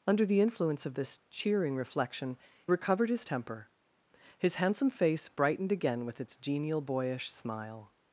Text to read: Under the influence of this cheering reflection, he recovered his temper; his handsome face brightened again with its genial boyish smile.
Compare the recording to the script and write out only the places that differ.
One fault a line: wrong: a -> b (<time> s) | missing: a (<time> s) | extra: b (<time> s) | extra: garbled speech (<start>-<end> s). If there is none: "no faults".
missing: he (2.4 s)